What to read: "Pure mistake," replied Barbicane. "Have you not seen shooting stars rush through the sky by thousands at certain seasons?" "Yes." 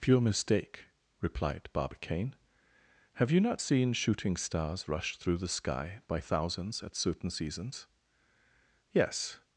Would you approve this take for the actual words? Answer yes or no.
yes